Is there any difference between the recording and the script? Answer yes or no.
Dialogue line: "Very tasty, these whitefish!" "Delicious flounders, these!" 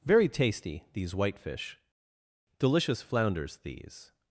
no